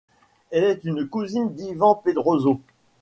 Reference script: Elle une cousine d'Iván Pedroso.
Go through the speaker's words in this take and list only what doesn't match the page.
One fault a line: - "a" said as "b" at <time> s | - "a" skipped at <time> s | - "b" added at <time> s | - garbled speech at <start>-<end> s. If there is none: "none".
- "est" added at 0.6 s